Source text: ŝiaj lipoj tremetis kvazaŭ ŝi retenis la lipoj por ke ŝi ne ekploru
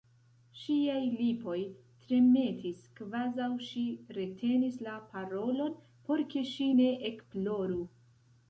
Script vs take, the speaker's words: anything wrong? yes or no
yes